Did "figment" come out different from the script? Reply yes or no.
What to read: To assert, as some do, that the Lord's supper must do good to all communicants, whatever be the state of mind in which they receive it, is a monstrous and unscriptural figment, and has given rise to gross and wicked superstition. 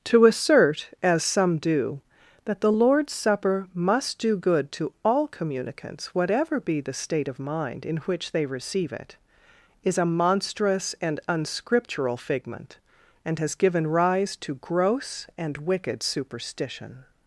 no